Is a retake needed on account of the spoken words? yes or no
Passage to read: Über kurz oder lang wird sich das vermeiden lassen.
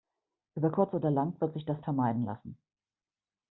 no